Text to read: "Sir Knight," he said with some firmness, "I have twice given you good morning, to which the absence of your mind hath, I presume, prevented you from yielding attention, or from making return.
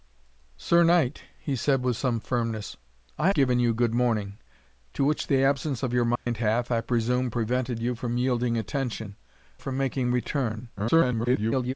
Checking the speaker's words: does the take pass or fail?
fail